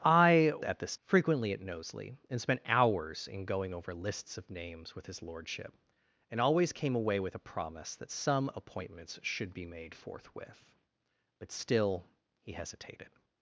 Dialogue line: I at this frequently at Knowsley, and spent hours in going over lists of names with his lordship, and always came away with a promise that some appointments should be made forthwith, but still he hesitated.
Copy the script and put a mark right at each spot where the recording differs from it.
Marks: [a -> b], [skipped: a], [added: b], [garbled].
I at this frequently at Knowsley, and spent hours in going over lists of names with his lordship, and always came away with a promise that some appointments should be made forthwith, but still he hesitated.